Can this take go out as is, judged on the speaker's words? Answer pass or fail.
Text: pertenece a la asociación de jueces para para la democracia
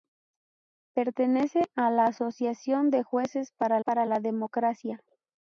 pass